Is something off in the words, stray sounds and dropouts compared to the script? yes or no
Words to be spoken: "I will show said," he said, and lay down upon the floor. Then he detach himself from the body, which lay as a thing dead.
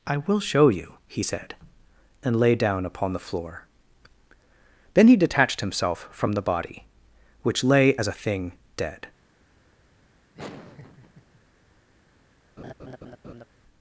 yes